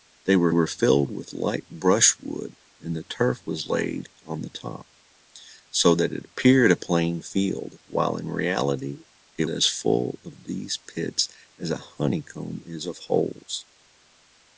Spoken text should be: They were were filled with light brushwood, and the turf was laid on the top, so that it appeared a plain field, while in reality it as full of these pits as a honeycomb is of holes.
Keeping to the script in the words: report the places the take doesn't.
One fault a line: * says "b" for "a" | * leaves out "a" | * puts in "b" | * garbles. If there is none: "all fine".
all fine